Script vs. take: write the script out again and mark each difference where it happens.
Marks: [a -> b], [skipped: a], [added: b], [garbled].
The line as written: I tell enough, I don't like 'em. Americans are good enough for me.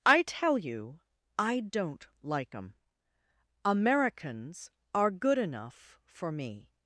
I tell [enough, -> you] I don't like 'em. Americans are good enough for me.